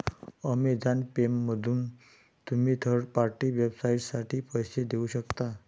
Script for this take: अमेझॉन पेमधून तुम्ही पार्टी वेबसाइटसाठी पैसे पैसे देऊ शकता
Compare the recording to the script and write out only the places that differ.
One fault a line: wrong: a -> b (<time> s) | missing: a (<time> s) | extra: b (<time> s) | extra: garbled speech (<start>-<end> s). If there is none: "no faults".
extra: थर्ड (2.8 s)
missing: पैसे (4.8 s)